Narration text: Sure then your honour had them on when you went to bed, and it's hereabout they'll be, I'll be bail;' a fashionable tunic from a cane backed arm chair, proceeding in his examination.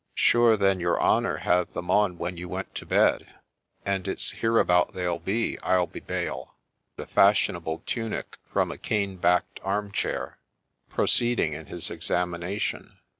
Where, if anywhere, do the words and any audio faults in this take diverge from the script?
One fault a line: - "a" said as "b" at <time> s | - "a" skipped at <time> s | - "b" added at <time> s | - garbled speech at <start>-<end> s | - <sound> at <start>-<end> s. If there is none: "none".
none